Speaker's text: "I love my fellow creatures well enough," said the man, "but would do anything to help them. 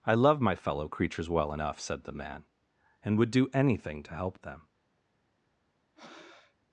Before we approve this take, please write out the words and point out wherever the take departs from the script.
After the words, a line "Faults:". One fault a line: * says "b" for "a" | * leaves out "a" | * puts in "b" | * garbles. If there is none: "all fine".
"I love my fellow creatures well enough," said the man, "and would do anything to help them.
Faults:
* says "and" for "but"